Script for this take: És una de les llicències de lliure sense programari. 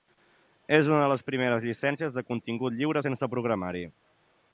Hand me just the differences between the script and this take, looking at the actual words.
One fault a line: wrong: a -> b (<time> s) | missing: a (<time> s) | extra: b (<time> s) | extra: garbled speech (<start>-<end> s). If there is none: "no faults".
extra: primeres (1.3 s)
extra: contingut (2.3 s)